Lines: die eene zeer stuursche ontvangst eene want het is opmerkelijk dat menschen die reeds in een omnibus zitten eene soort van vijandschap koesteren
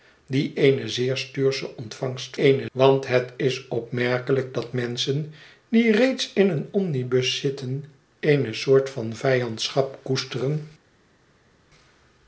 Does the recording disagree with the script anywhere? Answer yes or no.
no